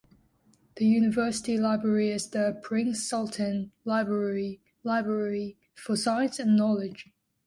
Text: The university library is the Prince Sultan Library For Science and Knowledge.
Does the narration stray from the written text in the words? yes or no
yes